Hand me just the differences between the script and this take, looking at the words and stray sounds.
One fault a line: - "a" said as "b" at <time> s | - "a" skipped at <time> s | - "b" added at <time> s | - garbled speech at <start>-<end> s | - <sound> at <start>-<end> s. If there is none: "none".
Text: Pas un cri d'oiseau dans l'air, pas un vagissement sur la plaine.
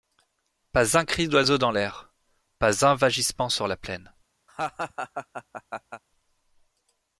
- laugh at 4.5-6.0 s